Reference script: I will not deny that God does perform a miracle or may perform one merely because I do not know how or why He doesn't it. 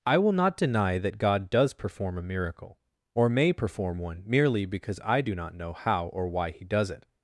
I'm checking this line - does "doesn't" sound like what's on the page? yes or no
no